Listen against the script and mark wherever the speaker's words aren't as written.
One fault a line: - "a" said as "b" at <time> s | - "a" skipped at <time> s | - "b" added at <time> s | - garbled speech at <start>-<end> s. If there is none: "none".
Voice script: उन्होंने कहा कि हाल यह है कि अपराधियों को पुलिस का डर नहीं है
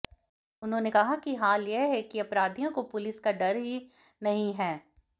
- "ही" added at 3.6 s